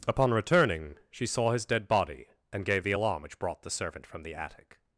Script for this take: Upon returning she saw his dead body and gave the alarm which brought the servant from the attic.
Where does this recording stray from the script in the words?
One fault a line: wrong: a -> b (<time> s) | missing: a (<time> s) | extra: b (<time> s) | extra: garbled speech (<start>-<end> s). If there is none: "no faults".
no faults